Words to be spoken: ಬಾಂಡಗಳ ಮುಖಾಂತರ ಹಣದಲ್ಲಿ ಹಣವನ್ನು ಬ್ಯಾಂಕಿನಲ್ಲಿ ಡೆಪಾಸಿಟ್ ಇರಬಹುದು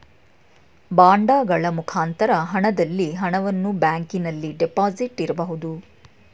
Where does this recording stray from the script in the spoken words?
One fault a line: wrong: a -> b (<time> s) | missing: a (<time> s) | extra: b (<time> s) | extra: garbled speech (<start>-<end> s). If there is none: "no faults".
no faults